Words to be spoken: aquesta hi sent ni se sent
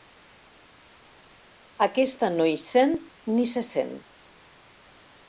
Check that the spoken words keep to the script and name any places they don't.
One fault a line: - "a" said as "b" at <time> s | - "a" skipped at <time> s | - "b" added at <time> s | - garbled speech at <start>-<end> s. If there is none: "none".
- "no" added at 2.4 s